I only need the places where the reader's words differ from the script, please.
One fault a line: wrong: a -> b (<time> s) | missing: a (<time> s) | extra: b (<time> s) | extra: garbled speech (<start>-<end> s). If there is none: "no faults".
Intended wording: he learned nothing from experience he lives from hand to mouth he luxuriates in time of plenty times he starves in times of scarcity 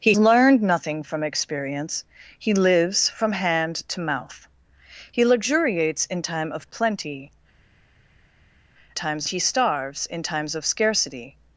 no faults